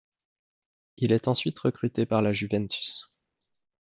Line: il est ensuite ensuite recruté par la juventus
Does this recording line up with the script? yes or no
no